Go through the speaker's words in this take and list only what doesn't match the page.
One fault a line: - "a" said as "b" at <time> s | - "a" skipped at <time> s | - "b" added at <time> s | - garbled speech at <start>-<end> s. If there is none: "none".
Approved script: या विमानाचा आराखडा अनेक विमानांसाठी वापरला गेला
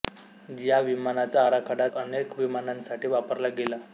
none